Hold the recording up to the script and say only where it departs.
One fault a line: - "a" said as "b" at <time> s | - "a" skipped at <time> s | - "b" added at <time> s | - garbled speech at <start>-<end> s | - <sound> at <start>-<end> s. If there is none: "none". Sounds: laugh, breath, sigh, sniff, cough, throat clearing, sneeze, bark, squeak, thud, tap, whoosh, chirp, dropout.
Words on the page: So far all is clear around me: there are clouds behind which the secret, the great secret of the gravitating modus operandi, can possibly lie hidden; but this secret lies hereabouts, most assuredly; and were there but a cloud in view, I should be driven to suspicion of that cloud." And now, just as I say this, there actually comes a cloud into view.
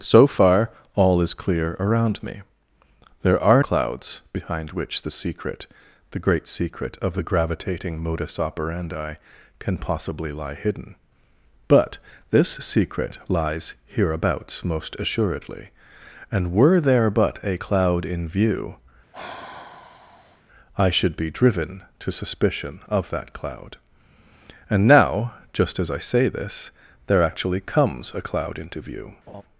- sigh at 19.1-20.4 s
- laugh at 29.3-29.4 s